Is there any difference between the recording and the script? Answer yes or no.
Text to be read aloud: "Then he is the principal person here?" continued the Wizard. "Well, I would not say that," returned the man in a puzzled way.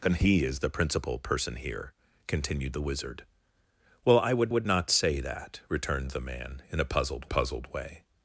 yes